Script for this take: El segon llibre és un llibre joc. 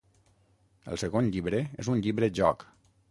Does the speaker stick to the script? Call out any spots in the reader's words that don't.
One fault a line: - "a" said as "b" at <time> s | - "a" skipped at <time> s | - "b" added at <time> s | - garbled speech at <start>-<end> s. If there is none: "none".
none